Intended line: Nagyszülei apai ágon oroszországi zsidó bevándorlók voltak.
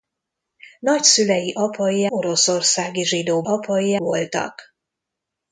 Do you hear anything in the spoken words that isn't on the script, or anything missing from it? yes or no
yes